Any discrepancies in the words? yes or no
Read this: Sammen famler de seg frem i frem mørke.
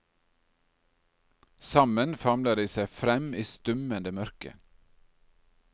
yes